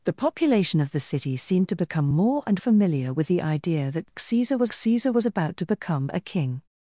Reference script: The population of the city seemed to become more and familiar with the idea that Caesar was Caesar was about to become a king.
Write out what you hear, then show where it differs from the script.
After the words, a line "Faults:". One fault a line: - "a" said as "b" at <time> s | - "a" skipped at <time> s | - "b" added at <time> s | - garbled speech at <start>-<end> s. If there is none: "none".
The population of the city seemed to become more and familiar with the idea that Caesar was Caesar was about to become a king.
Faults:
none